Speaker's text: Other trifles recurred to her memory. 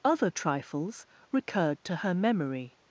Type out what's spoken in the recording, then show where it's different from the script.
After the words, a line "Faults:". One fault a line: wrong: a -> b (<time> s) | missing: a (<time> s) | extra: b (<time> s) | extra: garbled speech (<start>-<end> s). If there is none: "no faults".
Other trifles recurred to her memory.
Faults:
no faults